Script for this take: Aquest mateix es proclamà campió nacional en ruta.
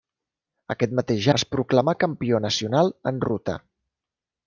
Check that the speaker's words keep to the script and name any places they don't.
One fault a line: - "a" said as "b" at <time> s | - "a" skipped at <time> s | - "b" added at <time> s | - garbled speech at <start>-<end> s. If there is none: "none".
none